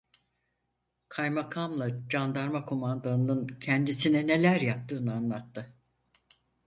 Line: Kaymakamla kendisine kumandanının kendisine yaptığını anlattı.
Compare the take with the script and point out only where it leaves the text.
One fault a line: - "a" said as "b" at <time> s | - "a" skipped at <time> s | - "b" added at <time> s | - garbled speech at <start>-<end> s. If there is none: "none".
- "kendisine" said as "candarma" at 2.1 s
- "neler" added at 4.3 s